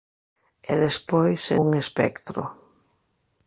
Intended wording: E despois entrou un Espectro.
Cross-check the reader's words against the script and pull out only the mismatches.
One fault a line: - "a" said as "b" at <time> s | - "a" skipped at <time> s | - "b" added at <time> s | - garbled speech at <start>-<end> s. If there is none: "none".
- "entrou" skipped at 1.4 s